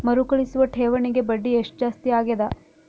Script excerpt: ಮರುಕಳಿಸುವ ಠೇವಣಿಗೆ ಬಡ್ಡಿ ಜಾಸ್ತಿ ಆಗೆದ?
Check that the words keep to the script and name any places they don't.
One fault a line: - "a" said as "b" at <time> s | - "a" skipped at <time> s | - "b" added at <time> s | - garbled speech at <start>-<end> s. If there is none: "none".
- "ಎಷ್ಟ" added at 1.5 s